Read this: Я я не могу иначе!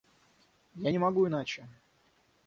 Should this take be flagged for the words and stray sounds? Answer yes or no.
yes